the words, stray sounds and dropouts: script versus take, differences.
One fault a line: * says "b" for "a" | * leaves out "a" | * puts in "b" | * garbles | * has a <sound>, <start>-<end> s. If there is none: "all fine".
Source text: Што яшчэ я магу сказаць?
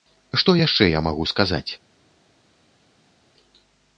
all fine